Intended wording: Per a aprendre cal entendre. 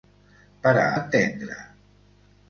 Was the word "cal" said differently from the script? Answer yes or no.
yes